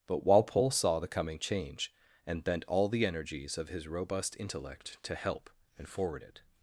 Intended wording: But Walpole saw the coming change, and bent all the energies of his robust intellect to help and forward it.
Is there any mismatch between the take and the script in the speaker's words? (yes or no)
no